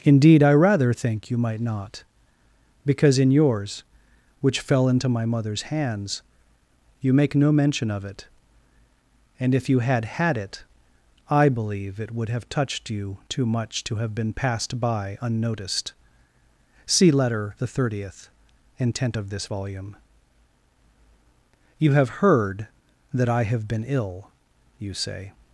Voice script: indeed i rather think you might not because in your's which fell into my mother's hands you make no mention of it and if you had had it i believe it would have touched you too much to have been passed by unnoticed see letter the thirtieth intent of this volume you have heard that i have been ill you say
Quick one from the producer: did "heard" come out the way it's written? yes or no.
yes